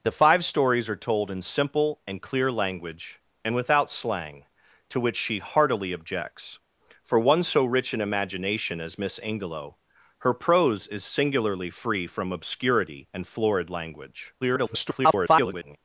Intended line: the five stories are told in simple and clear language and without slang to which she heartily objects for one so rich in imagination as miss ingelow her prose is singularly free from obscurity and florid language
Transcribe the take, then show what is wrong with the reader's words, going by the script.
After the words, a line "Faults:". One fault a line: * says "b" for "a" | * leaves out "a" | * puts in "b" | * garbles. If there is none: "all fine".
the five stories are told in simple and clear language and without slang to which she heartily objects for one so rich in imagination as miss ingelow her prose is singularly free from obscurity and florid language [garbled]
Faults:
* garbles